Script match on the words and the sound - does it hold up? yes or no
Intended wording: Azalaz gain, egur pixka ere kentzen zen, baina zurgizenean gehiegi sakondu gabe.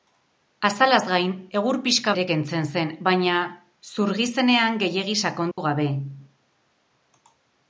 no